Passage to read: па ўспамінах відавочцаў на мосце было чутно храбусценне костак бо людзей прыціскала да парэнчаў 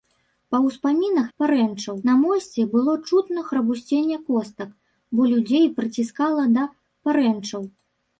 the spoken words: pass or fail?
fail